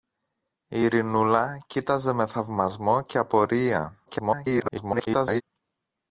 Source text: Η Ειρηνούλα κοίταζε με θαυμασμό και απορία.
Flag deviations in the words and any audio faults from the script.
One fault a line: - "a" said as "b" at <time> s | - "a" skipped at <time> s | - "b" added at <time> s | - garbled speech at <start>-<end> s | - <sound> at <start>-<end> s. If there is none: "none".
- garbled speech at 4.1-5.4 s